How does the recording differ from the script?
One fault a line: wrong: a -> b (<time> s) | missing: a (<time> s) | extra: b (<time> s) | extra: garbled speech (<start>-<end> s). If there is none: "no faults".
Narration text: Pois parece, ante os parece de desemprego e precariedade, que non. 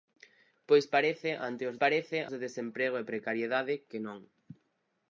no faults